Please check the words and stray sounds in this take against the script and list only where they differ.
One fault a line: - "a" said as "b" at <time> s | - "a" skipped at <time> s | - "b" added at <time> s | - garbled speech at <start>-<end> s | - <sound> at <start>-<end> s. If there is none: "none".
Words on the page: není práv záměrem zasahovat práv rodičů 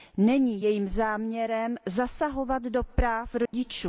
- "práv" said as "jejím" at 0.6 s
- "do" added at 2.6 s
- dropout at 3.5-3.5 s